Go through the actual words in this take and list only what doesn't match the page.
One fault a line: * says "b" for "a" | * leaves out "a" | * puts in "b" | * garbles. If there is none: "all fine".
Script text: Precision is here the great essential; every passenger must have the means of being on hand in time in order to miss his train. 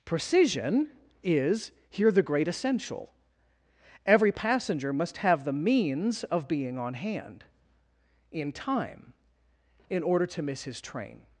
all fine